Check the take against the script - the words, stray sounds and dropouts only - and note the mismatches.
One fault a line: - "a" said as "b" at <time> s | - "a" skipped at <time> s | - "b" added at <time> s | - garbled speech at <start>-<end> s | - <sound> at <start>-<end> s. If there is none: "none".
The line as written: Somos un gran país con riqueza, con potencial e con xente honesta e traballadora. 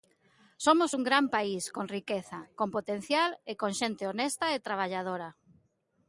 none